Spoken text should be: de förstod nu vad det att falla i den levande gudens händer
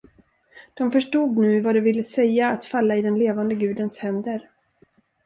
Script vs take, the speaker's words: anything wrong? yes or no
yes